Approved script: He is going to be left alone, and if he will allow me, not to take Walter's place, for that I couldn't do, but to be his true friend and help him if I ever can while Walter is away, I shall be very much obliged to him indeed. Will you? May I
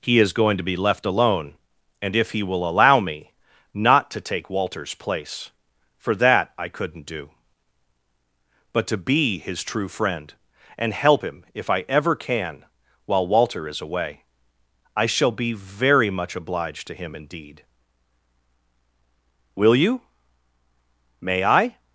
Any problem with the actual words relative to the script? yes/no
no